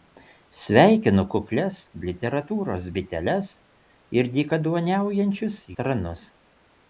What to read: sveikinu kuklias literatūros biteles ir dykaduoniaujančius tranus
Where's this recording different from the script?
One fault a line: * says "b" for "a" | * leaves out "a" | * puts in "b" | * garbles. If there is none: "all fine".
all fine